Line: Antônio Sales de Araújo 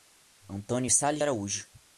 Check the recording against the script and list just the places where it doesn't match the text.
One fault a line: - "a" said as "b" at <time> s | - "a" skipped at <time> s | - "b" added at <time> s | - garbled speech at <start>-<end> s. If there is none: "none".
- "de" skipped at 1.2 s